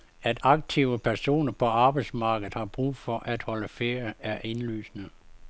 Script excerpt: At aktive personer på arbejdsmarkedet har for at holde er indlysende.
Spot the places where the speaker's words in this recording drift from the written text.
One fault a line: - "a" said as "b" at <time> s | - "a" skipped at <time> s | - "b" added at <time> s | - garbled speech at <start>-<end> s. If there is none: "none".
- "brug" added at 2.6 s
- "ferie" added at 3.7 s